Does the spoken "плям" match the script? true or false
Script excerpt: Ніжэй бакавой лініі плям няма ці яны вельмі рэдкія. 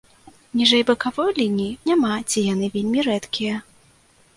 false